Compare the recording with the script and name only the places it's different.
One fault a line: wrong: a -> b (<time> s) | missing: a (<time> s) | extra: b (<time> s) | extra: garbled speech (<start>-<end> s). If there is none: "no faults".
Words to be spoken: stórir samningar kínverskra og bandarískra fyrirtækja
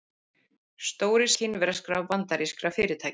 missing: samningar (1.3 s)